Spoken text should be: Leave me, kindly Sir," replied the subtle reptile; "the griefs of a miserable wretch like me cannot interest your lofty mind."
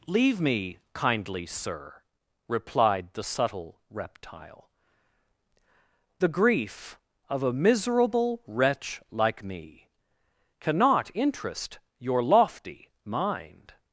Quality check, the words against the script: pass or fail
fail